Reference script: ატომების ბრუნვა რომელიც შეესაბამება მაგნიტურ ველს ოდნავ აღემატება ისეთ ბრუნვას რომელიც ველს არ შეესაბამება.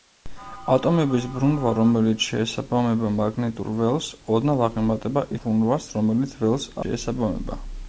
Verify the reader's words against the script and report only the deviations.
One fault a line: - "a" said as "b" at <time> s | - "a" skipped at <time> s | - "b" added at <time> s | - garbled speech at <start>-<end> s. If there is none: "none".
- "ისეთ" skipped at 5.2 s
- "არ" skipped at 6.7 s